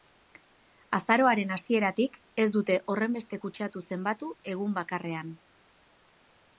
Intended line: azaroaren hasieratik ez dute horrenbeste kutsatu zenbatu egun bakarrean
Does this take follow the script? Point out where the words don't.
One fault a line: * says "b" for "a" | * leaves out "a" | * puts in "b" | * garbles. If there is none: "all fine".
all fine